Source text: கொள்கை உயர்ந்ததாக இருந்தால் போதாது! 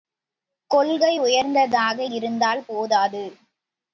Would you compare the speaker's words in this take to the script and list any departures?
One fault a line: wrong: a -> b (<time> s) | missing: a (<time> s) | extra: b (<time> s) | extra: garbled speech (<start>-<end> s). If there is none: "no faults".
no faults